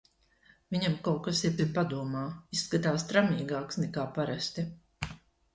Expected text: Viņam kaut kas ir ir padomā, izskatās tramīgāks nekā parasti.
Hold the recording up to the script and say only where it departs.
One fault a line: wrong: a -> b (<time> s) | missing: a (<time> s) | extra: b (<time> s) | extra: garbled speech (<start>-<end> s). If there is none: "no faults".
no faults